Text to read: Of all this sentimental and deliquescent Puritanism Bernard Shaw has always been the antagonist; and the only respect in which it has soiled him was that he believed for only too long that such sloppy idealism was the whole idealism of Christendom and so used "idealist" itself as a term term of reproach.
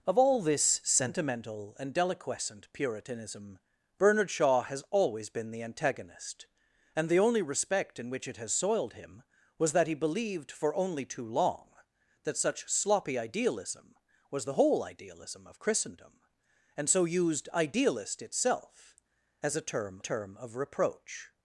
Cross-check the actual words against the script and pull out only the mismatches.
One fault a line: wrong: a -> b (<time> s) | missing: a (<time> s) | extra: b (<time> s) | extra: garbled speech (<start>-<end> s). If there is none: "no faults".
no faults